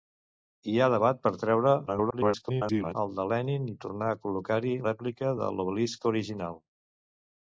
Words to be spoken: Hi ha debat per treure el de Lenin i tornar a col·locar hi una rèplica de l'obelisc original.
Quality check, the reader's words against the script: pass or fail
fail